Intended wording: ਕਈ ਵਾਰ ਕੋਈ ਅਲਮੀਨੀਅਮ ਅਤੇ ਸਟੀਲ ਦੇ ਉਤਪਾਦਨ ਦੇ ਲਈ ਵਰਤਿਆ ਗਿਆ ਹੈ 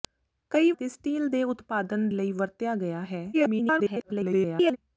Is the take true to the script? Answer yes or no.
no